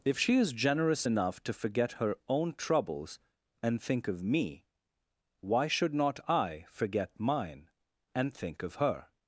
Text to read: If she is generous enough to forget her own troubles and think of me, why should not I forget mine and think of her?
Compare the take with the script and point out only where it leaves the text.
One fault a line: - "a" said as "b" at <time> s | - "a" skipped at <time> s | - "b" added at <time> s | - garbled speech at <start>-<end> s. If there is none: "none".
none